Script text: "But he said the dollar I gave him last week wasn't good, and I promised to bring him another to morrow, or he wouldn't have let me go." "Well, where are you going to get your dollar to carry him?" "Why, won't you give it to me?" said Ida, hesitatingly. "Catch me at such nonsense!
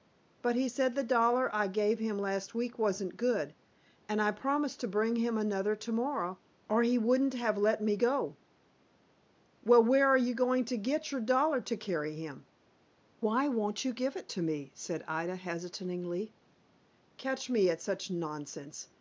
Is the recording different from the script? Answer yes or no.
no